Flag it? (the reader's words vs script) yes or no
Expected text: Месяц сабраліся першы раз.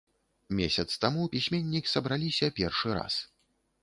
yes